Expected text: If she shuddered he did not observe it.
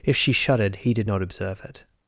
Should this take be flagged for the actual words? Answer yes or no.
no